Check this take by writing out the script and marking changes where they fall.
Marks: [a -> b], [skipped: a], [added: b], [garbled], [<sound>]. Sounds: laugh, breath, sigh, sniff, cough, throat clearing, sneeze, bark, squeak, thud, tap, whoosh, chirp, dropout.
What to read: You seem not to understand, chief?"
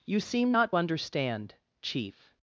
You seem not [skipped: to] understand, chief?"